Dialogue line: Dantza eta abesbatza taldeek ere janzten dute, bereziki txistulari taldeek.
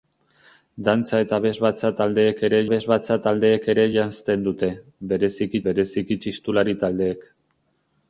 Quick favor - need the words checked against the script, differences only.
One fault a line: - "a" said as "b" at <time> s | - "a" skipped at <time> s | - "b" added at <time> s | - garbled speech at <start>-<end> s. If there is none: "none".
- "abesbatza taldeek ere" added at 2.7 s
- "bereziki" added at 5.7 s